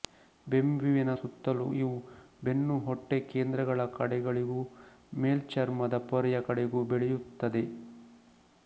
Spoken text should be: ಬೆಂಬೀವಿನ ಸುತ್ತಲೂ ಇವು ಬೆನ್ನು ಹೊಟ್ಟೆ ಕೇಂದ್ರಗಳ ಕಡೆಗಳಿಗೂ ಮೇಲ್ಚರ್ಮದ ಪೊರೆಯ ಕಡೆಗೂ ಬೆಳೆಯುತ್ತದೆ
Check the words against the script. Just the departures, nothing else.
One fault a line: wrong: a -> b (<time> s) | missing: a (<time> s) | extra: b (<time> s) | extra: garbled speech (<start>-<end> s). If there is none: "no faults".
no faults